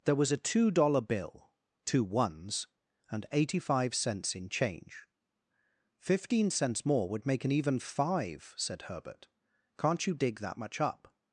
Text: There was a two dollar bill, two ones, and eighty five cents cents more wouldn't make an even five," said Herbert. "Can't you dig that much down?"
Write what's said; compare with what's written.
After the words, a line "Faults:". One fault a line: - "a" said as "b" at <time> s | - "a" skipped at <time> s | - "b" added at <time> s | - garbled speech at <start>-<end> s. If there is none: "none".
There was a two dollar bill, two ones, and eighty five cents in change. "Fifteen cents more would make an even five," said Herbert. "Can't you dig that much up?"
Faults:
- "in change Fifteen" added at 4.3 s
- "wouldn't" said as "would" at 7.1 s
- "down" said as "up" at 10.8 s